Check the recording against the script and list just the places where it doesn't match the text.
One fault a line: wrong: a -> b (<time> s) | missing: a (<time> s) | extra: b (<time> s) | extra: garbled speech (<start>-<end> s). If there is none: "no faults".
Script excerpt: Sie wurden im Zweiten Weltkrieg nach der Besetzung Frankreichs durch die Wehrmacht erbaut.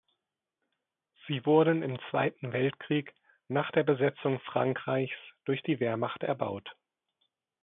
no faults